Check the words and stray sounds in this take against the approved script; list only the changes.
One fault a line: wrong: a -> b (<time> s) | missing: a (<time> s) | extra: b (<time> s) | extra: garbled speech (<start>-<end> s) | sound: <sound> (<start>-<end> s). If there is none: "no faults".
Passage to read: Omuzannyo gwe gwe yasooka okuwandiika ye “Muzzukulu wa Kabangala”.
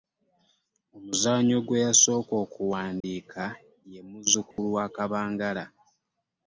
missing: gwe (1.8 s)
sound: dropout (3.0-3.0 s)
sound: dropout (4.5-4.6 s)